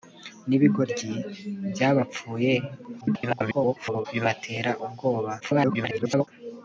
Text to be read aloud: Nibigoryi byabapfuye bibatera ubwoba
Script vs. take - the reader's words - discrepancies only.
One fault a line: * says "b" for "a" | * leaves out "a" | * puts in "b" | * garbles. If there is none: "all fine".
* garbles
* garbles